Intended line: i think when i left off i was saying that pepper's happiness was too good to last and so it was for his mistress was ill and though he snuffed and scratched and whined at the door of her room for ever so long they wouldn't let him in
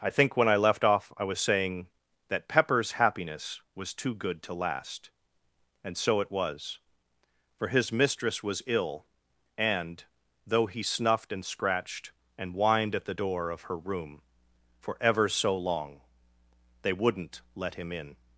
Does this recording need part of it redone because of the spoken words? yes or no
no